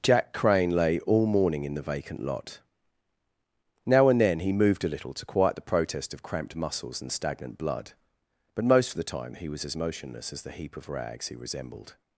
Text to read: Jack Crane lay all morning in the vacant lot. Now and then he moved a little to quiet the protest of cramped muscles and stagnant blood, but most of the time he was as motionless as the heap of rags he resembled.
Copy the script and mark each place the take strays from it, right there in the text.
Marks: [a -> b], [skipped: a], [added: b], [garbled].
Jack Crane lay all morning in the vacant lot. Now and then he moved a little to quiet the protest of cramped muscles and stagnant blood, but most of the time he was as motionless as the heap of rags he resembled.